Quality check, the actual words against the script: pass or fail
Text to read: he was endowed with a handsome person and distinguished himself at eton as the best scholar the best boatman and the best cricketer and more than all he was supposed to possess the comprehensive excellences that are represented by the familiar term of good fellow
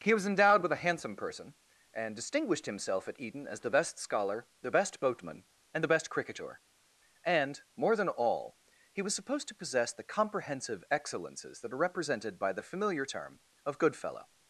pass